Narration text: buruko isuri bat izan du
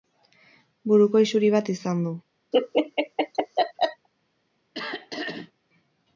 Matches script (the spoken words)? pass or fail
pass